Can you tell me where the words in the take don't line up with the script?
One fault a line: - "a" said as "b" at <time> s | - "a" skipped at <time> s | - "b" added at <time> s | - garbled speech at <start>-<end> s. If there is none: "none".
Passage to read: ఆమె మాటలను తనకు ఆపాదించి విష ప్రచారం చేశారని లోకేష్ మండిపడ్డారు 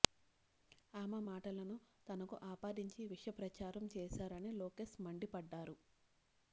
none